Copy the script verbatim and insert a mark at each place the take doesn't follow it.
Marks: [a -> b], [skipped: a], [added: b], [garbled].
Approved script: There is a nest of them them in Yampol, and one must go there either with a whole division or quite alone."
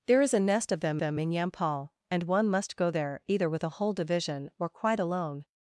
There is a nest of them them in Yampol, and one must go there either with a whole division or quite alone."